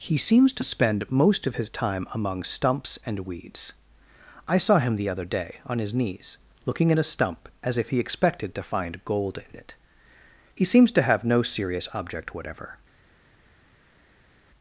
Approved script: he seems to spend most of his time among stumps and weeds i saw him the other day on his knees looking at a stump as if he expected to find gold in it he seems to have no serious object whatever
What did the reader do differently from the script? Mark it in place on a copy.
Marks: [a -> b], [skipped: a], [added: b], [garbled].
he seems to spend most of his time among stumps and weeds i saw him the other day on his knees looking at a stump as if he expected to find gold in it he seems to have no serious object whatever